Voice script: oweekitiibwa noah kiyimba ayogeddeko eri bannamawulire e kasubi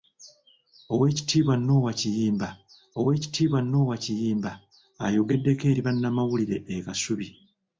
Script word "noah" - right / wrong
right